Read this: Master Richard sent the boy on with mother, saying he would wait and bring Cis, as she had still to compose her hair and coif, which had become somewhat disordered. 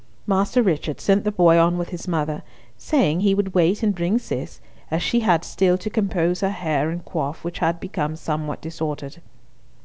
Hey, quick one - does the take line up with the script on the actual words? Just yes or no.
no